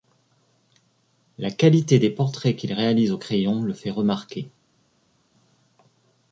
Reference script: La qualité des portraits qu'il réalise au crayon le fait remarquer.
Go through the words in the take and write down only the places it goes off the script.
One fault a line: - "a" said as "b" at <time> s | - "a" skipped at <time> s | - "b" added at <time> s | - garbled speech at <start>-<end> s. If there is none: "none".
none